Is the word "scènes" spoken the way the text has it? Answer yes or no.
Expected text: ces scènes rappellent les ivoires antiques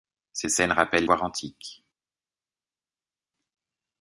yes